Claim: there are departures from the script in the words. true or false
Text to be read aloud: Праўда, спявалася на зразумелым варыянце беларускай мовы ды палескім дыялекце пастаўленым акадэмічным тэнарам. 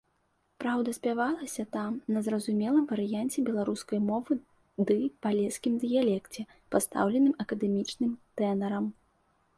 true